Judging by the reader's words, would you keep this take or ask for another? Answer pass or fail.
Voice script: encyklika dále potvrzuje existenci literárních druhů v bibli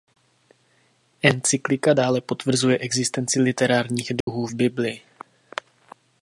pass